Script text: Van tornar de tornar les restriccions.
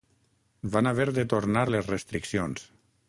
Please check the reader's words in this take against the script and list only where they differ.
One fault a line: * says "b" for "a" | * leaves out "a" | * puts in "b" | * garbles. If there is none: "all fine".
* says "haver" for "tornar"